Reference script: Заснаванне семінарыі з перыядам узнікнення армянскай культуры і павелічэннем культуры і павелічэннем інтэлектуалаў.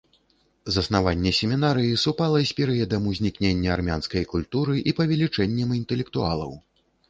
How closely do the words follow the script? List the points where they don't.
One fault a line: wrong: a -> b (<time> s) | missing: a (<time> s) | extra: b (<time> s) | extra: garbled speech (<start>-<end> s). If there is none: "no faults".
extra: супала (2.0 s)
missing: культуры і павелічэннем (5.8 s)